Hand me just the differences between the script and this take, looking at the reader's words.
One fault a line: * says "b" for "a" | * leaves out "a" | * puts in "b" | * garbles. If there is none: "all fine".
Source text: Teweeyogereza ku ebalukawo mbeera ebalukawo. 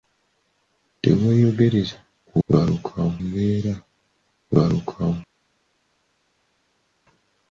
all fine